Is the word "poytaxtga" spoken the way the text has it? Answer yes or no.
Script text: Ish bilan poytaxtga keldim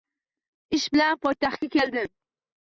yes